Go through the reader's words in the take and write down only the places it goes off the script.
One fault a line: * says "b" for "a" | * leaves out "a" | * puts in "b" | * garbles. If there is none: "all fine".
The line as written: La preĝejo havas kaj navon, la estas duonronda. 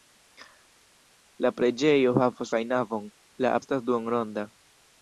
all fine